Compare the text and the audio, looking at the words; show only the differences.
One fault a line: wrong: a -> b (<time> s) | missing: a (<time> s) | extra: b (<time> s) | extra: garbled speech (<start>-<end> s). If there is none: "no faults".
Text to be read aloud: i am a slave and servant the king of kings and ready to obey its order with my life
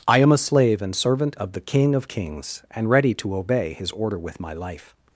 extra: of (1.4 s)
wrong: its -> his (3.7 s)